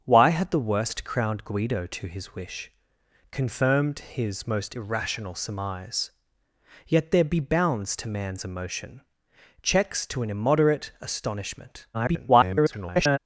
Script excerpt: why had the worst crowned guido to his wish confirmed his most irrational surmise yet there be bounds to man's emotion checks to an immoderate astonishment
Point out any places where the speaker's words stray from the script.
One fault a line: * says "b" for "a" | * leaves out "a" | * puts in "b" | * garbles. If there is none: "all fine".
* garbles